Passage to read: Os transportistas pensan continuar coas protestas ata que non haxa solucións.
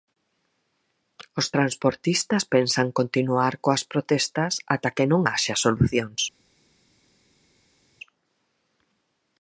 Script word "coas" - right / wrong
right